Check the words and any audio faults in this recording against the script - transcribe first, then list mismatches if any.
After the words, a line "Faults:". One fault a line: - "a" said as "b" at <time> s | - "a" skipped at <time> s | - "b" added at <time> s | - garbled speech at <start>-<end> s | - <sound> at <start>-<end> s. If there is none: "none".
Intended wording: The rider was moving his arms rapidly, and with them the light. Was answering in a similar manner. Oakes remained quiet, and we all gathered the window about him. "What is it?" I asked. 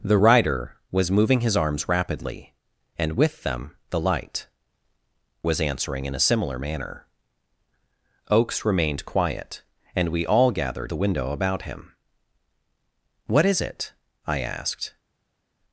The rider was moving his arms rapidly, and with them the light. Was answering in a similar manner. Oakes remained quiet, and we all gathered the window about him. "What is it?" I asked.
Faults:
none